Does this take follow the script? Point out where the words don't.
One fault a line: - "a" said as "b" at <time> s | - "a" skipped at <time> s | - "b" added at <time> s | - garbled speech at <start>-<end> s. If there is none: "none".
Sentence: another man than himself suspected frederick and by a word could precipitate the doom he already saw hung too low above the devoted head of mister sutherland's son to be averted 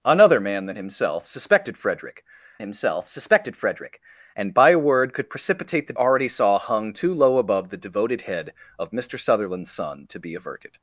- "himself suspected frederick" added at 2.6 s
- "doom he" skipped at 5.9 s